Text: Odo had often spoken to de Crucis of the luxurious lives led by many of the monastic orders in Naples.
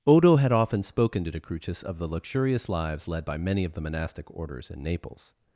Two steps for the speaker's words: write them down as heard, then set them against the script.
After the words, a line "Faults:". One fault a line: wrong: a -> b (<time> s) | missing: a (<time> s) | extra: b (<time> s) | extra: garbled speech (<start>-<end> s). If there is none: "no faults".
Odo had often spoken to de Crucis of the luxurious lives led by many of the monastic orders in Naples.
Faults:
no faults